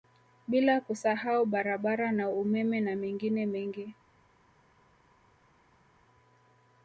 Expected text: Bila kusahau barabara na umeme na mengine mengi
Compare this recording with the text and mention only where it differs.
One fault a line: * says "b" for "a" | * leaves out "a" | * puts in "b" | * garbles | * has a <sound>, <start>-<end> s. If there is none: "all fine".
all fine